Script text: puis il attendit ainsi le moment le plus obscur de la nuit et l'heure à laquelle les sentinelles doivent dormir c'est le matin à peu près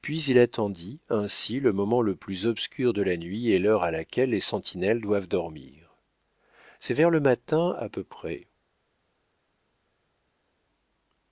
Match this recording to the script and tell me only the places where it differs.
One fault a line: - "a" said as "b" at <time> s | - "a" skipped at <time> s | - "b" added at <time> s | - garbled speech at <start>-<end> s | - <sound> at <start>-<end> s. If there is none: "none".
- "vers" added at 7.0 s